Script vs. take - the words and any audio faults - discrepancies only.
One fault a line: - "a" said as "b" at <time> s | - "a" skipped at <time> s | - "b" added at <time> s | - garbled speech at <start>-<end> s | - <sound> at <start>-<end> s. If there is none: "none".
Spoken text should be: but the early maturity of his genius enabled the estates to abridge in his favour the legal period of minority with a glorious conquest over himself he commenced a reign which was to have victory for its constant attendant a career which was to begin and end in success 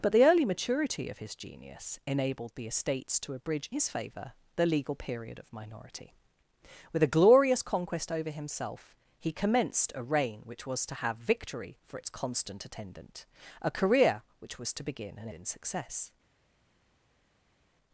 - "in" skipped at 3.7 s
- "end" skipped at 15.3 s